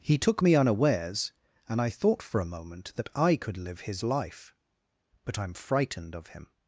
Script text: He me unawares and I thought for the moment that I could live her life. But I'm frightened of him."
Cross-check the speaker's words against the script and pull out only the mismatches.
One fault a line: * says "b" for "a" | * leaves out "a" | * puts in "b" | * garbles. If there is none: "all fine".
* puts in "took"
* says "a" for "the"
* says "his" for "her"